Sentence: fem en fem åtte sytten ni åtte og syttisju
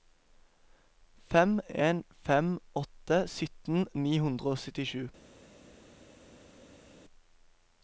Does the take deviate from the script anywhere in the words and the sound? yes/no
yes